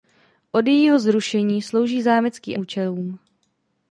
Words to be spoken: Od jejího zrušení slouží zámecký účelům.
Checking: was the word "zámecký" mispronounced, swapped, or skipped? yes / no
no